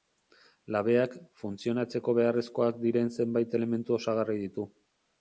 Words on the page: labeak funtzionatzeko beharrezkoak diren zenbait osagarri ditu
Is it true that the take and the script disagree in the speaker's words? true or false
true